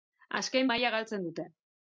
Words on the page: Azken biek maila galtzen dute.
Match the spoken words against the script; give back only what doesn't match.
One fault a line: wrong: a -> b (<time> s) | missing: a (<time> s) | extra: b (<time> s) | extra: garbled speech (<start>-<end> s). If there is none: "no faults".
missing: biek (0.7 s)